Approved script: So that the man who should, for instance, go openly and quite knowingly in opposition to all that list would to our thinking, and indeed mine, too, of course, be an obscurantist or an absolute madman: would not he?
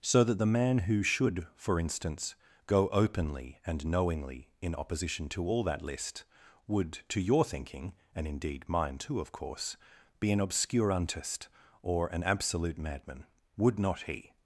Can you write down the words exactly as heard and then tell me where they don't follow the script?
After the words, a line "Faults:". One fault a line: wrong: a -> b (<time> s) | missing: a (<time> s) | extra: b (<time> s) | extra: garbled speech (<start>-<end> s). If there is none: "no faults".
So that the man who should, for instance, go openly and knowingly in opposition to all that list would to your thinking, and indeed mine, too, of course, be an obscurantist or an absolute madman: would not he?
Faults:
missing: quite (3.9 s)
wrong: our -> your (7.2 s)